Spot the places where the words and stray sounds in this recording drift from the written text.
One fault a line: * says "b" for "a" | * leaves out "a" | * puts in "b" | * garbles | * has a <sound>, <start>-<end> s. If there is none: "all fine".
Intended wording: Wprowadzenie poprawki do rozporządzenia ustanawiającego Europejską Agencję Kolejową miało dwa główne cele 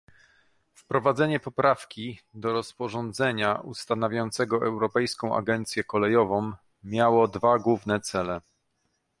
all fine